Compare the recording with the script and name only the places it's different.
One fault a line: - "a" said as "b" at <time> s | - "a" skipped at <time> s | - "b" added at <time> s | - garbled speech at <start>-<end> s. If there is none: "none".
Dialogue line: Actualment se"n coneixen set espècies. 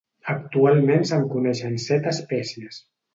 none